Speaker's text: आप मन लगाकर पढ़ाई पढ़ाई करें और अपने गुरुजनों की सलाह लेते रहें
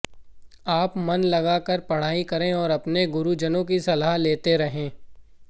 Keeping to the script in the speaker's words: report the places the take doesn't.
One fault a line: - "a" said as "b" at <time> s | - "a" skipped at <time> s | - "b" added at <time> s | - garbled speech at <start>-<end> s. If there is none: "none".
- "पढ़ाई" skipped at 2.2 s